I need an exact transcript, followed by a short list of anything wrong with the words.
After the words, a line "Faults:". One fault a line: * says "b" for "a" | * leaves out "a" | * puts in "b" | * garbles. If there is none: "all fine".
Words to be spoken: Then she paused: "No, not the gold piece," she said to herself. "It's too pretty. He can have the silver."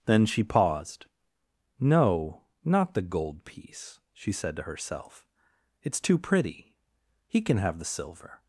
Then she paused: "No, not the gold piece," she said to herself. "It's too pretty. He can have the silver."
Faults:
all fine